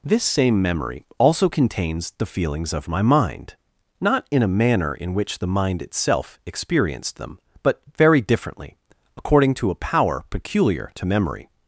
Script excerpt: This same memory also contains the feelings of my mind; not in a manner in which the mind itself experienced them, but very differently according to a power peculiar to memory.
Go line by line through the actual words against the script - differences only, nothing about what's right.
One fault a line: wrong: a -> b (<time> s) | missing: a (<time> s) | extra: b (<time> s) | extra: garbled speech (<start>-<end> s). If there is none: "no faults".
no faults